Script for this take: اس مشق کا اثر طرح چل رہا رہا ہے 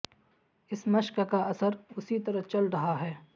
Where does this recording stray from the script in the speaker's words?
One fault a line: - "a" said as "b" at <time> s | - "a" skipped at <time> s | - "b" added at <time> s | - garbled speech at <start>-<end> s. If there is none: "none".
- "اسی" added at 2.0 s
- "رہا" skipped at 3.0 s